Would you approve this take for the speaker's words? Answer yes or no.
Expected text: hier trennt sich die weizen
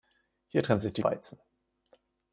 yes